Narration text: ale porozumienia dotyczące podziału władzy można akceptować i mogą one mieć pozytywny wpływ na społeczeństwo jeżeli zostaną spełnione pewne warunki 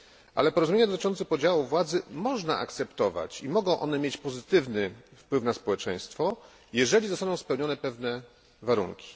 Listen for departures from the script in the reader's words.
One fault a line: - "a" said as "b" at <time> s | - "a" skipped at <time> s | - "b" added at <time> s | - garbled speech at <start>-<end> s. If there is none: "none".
none